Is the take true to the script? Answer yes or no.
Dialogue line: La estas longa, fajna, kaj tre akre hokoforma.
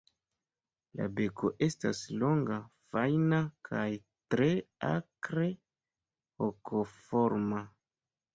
no